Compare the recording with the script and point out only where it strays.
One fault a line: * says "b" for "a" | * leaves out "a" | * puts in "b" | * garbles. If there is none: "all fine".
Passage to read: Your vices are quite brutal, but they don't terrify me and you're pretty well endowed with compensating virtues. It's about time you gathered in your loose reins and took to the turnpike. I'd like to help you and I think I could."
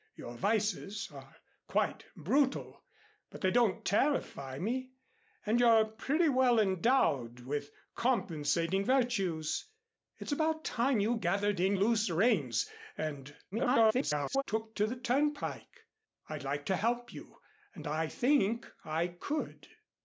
* leaves out "your"
* garbles